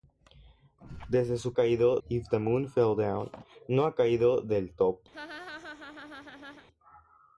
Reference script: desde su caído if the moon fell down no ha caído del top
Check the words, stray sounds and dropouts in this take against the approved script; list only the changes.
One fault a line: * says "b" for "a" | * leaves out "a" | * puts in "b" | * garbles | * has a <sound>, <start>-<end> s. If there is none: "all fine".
* has a laugh, 5.1-6.7 s